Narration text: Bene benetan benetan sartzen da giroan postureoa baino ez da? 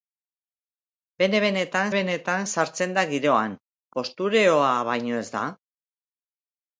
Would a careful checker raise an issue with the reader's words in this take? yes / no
no